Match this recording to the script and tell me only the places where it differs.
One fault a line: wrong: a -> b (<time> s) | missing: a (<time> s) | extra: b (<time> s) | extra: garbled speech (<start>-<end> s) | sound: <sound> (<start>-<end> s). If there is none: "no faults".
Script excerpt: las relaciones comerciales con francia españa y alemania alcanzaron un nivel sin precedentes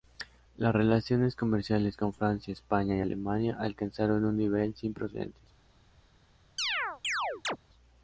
sound: chirp (6.6-7.6 s)